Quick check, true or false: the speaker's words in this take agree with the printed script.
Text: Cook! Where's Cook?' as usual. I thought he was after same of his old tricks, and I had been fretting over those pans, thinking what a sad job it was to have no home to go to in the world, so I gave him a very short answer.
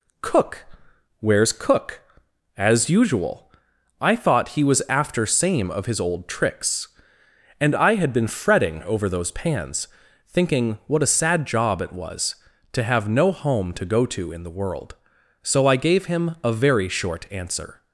true